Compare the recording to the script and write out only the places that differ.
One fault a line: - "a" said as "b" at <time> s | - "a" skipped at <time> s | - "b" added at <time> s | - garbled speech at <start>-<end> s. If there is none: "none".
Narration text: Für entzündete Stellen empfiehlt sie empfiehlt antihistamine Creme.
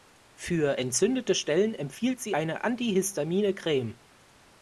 - "empfiehlt" said as "eine" at 2.3 s